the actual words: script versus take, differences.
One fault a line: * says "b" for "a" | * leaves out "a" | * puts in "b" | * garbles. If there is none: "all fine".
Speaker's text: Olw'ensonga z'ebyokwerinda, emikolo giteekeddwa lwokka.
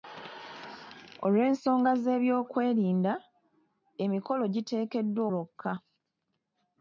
all fine